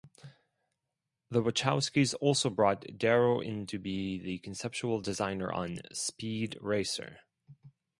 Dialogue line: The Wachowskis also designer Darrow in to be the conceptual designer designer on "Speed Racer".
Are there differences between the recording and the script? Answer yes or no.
yes